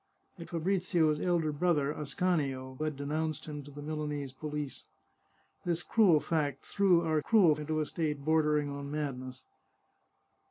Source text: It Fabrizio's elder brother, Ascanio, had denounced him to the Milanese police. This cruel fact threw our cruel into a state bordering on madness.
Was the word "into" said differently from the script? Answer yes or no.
no